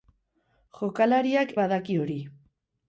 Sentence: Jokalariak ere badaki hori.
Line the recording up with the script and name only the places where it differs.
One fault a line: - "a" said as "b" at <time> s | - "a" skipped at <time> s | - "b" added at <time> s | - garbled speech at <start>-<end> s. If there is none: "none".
- "ere" skipped at 1.5 s